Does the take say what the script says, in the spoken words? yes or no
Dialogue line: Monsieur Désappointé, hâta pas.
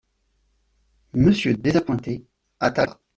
yes